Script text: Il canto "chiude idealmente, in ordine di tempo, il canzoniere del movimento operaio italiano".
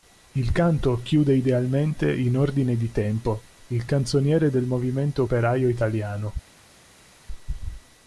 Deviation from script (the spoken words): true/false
false